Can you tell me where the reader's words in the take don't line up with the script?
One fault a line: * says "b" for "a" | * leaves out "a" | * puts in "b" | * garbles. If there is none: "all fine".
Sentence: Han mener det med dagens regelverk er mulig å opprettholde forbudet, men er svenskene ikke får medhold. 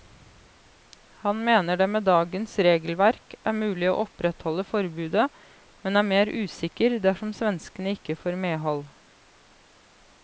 * puts in "mer usikker dersom"